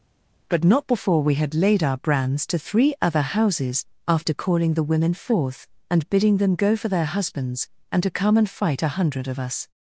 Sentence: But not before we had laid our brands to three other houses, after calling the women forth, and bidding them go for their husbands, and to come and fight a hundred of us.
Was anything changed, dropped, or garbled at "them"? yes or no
no